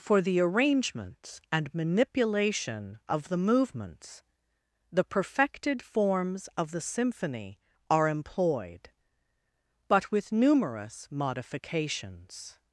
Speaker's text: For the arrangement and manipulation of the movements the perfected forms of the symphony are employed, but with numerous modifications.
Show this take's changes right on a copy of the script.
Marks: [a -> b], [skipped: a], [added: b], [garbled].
For the [arrangement -> arrangements] and manipulation of the movements the perfected forms of the symphony are employed, but with numerous modifications.